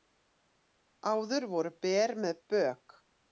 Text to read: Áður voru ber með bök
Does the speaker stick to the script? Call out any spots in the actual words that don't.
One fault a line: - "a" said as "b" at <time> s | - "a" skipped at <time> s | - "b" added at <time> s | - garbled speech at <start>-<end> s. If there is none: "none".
none